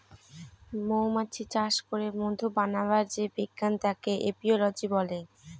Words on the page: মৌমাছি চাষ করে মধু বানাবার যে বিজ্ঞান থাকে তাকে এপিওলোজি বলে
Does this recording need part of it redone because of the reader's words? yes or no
yes